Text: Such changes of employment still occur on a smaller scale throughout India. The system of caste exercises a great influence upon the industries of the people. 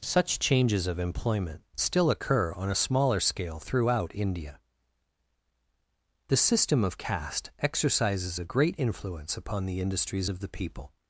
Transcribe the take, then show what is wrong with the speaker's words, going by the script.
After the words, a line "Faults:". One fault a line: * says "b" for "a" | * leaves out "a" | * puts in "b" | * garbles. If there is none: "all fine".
Such changes of employment still occur on a smaller scale throughout India. The system of caste exercises a great influence upon the industries of the people.
Faults:
all fine